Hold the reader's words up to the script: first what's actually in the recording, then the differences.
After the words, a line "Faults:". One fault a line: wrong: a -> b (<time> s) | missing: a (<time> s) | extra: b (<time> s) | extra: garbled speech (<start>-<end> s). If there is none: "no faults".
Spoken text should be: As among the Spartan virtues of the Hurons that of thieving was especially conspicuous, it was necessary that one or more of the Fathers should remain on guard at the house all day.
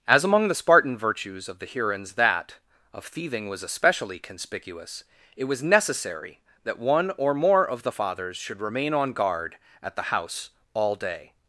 As among the Spartan virtues of the Hurons that of thieving was especially conspicuous, it was necessary that one or more of the Fathers should remain on guard at the house all day.
Faults:
no faults